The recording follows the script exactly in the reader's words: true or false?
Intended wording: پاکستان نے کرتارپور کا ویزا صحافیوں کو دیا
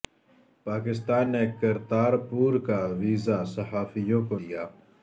true